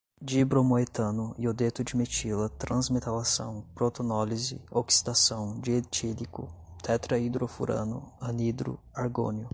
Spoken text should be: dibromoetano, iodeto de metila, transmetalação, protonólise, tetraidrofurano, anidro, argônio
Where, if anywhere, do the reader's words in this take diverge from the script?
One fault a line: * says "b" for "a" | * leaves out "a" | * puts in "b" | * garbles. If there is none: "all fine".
* puts in "oxidação dietílico"